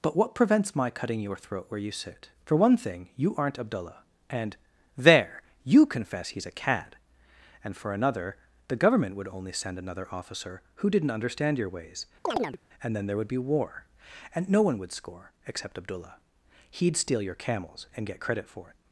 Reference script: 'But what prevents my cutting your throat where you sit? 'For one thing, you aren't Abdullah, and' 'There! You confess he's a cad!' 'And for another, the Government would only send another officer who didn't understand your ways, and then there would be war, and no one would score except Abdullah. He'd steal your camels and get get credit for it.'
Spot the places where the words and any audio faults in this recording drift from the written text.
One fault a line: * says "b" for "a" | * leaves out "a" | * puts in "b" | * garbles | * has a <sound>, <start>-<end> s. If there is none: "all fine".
* has a chirp, 12.3-12.6 s
* leaves out "get"